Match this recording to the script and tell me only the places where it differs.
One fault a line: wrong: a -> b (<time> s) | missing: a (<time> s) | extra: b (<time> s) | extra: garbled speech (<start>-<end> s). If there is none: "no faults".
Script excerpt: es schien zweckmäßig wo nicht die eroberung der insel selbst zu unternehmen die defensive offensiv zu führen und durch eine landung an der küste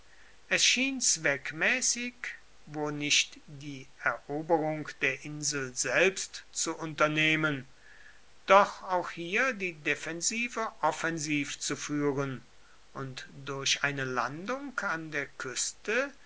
extra: doch auch hier (8.4 s)